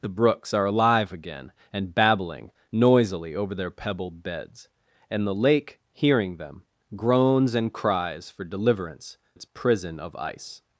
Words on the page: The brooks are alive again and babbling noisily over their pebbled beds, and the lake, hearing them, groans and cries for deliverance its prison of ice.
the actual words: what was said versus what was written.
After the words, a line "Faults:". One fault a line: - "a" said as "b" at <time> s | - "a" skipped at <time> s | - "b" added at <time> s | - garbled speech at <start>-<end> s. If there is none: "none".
The brooks are alive again and babbling noisily over their pebbled beds, and the lake, hearing them, groans and cries for deliverance its prison of ice.
Faults:
none